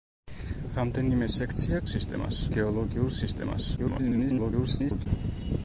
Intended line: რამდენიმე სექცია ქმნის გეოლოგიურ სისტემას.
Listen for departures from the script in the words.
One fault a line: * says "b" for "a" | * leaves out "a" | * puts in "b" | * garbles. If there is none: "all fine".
* says "სისტემას" for "ქმნის"
* garbles